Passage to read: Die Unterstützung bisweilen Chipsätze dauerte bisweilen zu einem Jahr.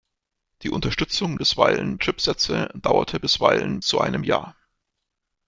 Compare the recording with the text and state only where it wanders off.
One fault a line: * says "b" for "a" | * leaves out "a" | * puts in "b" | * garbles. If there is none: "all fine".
all fine